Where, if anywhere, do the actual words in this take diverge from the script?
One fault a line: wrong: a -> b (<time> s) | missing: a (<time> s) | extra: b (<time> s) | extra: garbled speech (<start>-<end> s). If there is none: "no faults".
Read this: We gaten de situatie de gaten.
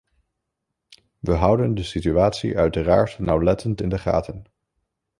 wrong: gaten -> houden (1.3 s)
extra: uiteraard nauwlettend in (2.6 s)